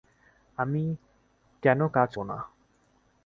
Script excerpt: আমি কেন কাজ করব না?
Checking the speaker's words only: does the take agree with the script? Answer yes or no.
no